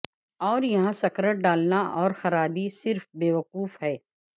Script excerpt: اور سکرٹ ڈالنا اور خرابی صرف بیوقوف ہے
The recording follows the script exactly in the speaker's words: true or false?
false